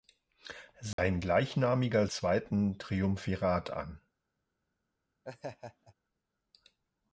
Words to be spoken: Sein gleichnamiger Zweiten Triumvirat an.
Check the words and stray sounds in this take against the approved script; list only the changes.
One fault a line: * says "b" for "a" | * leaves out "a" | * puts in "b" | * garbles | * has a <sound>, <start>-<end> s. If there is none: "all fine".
* has a dropout, 0.9-1.0 s
* has a laugh, 5.2-5.9 s